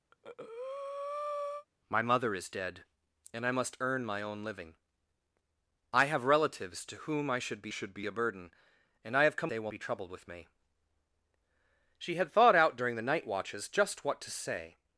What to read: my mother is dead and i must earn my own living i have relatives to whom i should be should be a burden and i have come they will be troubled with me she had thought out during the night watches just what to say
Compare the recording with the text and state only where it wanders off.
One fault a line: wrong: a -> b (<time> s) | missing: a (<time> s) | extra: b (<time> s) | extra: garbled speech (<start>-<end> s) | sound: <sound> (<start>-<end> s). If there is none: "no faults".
sound: breath (0.1-1.7 s)